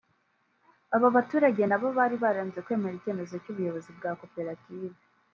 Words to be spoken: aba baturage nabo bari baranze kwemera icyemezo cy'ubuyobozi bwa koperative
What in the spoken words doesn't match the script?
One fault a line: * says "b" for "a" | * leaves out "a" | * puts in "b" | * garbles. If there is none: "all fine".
all fine